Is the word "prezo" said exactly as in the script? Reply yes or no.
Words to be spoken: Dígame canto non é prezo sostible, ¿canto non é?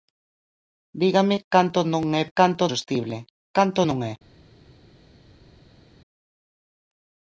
no